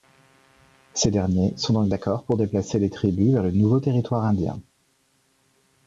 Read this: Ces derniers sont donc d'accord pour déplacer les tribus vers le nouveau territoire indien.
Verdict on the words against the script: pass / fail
pass